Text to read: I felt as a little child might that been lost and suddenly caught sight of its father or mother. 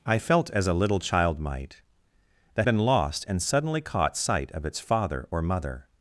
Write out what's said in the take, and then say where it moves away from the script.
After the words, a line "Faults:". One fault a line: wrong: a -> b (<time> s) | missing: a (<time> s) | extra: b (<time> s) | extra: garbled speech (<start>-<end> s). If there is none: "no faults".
I felt as a little child might that been lost and suddenly caught sight of its father or mother.
Faults:
no faults